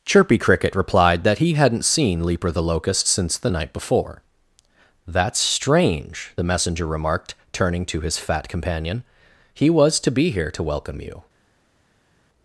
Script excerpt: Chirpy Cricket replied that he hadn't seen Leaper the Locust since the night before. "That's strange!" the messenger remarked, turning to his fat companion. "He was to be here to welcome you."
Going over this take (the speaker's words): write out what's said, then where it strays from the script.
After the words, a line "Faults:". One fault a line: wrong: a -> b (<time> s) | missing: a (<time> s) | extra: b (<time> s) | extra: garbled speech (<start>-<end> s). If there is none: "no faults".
Chirpy Cricket replied that he hadn't seen Leaper the Locust since the night before. "That's strange!" the messenger remarked, turning to his fat companion. "He was to be here to welcome you."
Faults:
no faults